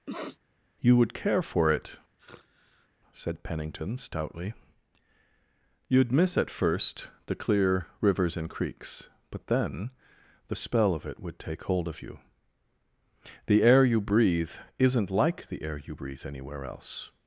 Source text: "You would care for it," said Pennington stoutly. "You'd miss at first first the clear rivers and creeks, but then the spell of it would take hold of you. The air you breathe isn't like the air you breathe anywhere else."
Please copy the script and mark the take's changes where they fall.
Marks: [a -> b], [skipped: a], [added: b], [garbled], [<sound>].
[sniff] "You would care for it," [sigh] said Pennington stoutly. "You'd miss at first [skipped: first] the clear rivers and creeks, but then the spell of it would take hold of you. The air you breathe isn't like the air you breathe anywhere else."